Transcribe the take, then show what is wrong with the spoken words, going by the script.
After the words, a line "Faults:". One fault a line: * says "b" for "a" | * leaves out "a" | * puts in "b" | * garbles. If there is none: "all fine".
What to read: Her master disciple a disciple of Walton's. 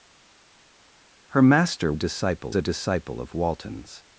Her master disciple a disciple of Walton's.
Faults:
all fine